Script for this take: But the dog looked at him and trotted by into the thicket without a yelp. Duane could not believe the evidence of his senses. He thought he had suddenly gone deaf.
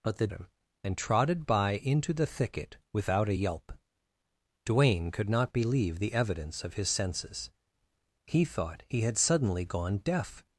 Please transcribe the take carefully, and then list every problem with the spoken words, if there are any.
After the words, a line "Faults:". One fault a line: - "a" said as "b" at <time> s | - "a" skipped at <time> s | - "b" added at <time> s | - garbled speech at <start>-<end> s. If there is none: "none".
But the him and trotted by into the thicket without a yelp. Duane could not believe the evidence of his senses. He thought he had suddenly gone deaf.
Faults:
- "dog looked at" skipped at 0.3 s